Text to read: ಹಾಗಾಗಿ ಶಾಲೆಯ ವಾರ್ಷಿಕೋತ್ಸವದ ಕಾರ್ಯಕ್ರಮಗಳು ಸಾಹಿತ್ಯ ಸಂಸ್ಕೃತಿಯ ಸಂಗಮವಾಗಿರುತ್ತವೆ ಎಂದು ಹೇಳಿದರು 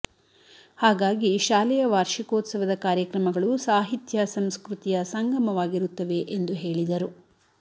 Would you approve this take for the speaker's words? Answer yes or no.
yes